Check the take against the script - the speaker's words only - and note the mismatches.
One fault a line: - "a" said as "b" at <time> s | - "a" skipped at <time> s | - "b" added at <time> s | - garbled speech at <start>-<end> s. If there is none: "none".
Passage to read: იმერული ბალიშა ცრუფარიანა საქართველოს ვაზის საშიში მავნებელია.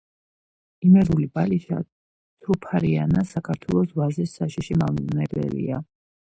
none